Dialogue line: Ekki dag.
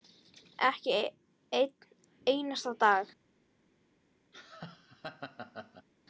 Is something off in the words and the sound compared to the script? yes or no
yes